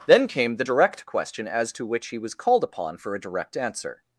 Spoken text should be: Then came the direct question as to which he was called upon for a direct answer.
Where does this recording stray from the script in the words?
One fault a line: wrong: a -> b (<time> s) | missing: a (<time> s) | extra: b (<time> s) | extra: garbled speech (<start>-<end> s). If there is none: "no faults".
no faults